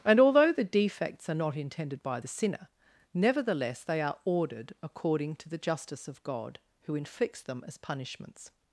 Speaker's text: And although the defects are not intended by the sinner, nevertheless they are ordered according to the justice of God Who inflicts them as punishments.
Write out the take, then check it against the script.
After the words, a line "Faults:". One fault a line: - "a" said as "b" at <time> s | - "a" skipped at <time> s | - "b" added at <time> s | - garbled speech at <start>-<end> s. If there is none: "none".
And although the defects are not intended by the sinner, nevertheless they are ordered according to the justice of God Who inflicts them as punishments.
Faults:
none